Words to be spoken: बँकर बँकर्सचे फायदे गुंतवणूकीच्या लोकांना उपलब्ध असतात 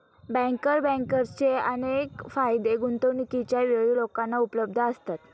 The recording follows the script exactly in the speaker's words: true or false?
false